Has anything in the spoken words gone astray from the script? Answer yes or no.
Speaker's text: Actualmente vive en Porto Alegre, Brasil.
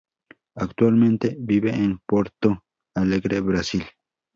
no